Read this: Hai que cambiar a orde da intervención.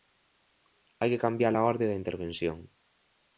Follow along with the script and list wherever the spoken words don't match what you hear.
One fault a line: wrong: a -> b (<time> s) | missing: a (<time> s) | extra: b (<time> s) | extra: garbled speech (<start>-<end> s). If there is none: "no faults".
no faults